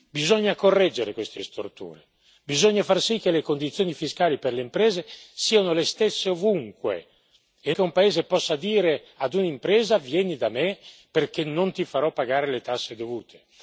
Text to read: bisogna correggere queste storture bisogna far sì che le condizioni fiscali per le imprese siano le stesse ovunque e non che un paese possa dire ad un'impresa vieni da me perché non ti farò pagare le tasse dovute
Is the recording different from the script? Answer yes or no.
yes